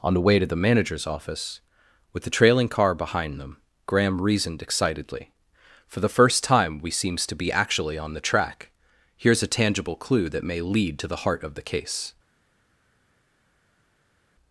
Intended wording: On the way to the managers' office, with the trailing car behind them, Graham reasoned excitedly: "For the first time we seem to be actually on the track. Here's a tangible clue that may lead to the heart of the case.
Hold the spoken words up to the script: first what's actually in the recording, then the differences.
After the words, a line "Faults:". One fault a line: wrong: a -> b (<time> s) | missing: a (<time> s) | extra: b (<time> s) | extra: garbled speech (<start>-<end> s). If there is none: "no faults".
On the way to the managers' office, with the trailing car behind them, Graham reasoned excitedly: "For the first time we seems to be actually on the track. Here's a tangible clue that may lead to the heart of the case.
Faults:
wrong: seem -> seems (6.9 s)